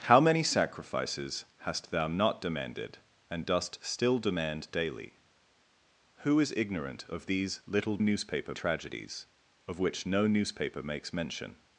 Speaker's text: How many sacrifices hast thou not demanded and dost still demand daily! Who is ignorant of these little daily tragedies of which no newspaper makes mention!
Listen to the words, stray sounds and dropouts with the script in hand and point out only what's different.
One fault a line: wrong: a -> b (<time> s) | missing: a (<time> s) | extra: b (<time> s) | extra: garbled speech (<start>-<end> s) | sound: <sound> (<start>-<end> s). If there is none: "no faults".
wrong: daily -> newspaper (8.0 s)